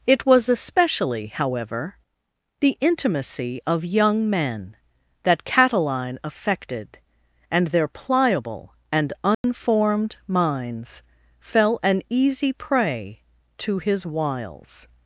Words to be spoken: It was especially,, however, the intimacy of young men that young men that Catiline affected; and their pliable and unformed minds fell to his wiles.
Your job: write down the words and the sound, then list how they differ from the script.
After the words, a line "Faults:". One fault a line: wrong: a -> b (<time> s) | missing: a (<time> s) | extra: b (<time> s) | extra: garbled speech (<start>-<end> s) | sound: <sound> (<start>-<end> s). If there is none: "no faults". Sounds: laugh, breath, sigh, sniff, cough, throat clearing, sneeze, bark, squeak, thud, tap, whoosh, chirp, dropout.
It was especially,, however, the intimacy of young men that Catiline affected; and their pliable and unformed minds fell an easy prey to his wiles.
Faults:
missing: young men that (5.4 s)
sound: dropout (9.3-9.4 s)
extra: an easy prey (11.8 s)